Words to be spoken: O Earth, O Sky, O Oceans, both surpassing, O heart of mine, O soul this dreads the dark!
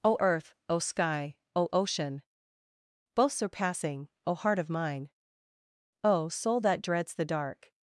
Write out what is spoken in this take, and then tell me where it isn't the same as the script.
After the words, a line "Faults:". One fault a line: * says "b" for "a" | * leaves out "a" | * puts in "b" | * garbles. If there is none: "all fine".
O Earth, O Sky, O Ocean, both surpassing, O heart of mine, O soul that dreads the dark!
Faults:
* says "Ocean" for "Oceans"
* says "that" for "this"